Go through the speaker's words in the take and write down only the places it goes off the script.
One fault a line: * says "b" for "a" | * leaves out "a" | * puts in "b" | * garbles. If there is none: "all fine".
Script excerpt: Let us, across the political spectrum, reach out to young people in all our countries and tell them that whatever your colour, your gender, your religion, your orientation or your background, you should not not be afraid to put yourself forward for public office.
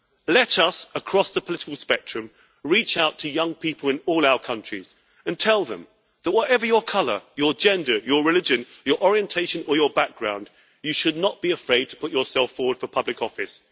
* leaves out "not"